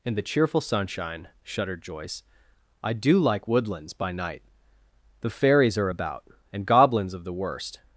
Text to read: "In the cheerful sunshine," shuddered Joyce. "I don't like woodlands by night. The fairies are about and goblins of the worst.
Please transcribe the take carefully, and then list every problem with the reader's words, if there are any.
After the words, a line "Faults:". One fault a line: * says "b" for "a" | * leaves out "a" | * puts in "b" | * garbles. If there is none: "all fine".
"In the cheerful sunshine," shuddered Joyce. "I do like woodlands by night. The fairies are about and goblins of the worst.
Faults:
* says "do" for "don't"